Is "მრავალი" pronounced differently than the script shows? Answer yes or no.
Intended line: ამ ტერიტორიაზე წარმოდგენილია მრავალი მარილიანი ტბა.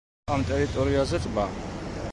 yes